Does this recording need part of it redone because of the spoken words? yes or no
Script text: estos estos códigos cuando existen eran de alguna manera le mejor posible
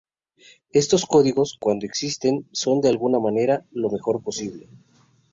yes